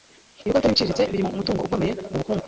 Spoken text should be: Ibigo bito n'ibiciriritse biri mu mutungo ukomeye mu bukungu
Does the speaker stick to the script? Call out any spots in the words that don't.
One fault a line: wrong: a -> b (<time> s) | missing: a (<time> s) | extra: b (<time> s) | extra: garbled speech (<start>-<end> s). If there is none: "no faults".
no faults